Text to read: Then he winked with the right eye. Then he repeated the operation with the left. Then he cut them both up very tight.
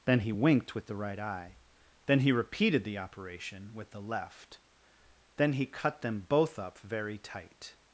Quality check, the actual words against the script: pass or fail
pass